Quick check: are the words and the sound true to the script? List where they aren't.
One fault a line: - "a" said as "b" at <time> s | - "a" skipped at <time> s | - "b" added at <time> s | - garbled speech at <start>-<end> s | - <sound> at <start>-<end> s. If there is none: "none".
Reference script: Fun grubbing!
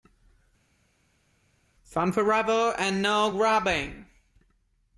- "forever and no" added at 2.1 s